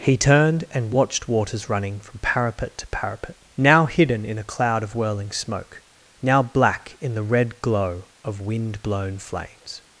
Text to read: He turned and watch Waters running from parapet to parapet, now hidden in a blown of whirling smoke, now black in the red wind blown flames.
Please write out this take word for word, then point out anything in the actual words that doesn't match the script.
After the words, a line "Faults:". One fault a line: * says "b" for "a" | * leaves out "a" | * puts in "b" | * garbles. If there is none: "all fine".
He turned and watched Waters running from parapet to parapet, now hidden in a cloud of whirling smoke, now black in the red glow of wind blown flames.
Faults:
* says "watched" for "watch"
* says "cloud" for "blown"
* puts in "glow of"